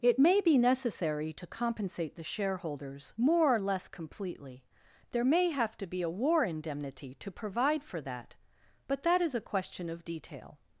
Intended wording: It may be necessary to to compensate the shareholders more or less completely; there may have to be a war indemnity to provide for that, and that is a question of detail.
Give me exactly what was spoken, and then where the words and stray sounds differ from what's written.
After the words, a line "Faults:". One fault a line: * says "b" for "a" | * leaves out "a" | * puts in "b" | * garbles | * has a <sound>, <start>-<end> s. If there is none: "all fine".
It may be necessary to compensate the shareholders more or less completely; there may have to be a war indemnity to provide for that, but that is a question of detail.
Faults:
* leaves out "to"
* says "but" for "and"